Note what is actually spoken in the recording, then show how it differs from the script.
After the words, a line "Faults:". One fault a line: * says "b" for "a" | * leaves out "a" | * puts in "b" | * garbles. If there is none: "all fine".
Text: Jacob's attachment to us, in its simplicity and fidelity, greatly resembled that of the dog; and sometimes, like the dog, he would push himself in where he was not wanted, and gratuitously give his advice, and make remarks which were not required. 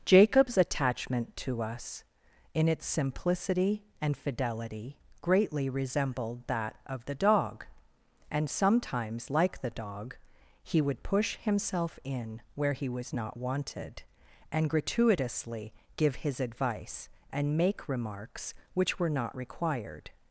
Jacob's attachment to us, in its simplicity and fidelity, greatly resembled that of the dog; and sometimes, like the dog, he would push himself in where he was not wanted, and gratuitously give his advice, and make remarks which were not required.
Faults:
all fine